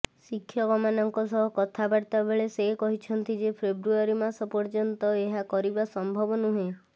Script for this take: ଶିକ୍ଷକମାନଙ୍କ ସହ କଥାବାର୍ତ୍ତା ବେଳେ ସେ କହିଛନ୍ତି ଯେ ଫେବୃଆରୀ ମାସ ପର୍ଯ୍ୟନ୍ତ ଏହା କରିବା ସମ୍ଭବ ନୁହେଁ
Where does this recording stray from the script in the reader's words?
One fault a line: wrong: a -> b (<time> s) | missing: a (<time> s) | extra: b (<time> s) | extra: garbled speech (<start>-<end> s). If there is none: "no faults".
no faults